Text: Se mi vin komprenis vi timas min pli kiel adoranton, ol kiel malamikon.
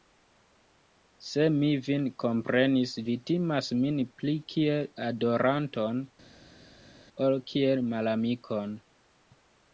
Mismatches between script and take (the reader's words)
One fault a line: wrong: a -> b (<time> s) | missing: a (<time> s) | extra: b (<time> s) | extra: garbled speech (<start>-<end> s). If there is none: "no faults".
no faults